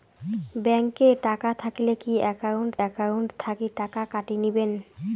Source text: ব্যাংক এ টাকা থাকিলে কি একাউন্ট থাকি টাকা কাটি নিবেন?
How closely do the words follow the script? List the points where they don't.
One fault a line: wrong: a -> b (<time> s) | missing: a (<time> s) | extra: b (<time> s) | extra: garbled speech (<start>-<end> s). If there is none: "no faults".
extra: একাউন্ট (2.9 s)